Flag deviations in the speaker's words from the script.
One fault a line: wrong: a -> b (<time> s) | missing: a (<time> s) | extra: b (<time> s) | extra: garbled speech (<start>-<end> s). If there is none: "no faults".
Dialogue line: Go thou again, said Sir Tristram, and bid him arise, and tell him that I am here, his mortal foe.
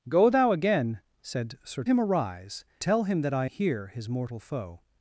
missing: Tristram and bid (1.8 s)
missing: and (2.6 s)
missing: am (3.5 s)